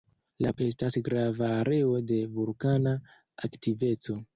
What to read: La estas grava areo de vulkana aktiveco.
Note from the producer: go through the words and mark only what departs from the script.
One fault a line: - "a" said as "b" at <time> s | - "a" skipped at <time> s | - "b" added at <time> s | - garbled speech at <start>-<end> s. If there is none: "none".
none